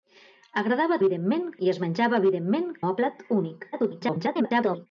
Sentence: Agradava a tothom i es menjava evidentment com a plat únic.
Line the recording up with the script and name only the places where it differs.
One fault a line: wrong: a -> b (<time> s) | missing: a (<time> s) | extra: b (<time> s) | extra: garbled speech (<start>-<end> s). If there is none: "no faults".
wrong: tothom -> evidentment (1.0 s)
missing: com (2.7 s)
extra: garbled speech (3.7-4.9 s)